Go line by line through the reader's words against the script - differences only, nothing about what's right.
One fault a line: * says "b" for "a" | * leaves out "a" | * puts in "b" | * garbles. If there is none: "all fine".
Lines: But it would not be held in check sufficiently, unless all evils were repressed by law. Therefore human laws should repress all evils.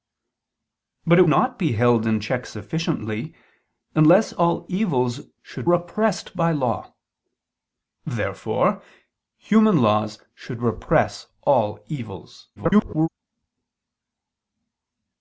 * leaves out "would"
* says "should" for "were"
* garbles